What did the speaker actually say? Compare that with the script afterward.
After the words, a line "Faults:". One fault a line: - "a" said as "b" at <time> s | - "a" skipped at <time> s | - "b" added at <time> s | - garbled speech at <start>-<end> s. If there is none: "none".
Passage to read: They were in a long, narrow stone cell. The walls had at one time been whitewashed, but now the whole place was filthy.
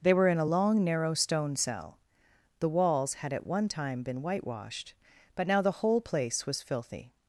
They were in a long, narrow stone cell. The walls had at one time been whitewashed, but now the whole place was filthy.
Faults:
none